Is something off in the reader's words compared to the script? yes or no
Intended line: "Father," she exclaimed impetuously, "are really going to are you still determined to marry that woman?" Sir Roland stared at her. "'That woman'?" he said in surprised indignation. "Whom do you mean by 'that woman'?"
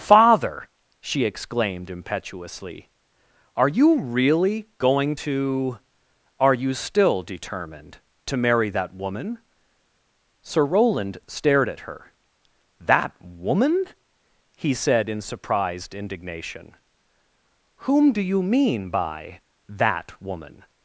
yes